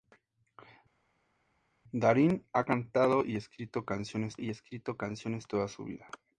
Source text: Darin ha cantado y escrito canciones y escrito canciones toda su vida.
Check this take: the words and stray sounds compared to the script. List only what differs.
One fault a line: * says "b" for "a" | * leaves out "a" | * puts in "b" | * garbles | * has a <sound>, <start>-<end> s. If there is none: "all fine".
all fine